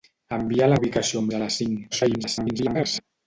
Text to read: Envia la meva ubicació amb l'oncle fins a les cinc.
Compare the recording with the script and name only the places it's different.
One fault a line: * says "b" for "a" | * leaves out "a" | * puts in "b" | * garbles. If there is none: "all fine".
* leaves out "meva"
* leaves out "l'oncle fins"
* garbles